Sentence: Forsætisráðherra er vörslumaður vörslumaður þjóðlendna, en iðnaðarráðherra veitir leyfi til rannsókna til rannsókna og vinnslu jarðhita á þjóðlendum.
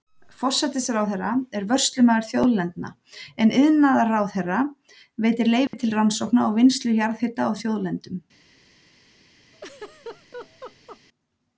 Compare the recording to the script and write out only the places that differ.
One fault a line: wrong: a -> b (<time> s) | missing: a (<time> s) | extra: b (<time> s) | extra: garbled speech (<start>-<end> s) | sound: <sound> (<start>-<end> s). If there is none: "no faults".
missing: vörslumaður (2.2 s)
sound: dropout (5.7-5.7 s)
missing: til rannsókna (6.5 s)
sound: laugh (9.5-11.0 s)